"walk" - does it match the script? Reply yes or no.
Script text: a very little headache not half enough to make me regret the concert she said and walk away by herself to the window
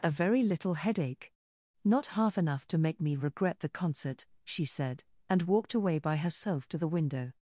no